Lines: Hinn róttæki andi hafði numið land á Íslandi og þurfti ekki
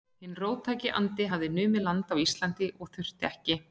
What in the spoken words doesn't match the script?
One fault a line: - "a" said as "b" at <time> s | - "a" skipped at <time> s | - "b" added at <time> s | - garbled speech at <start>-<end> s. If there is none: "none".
none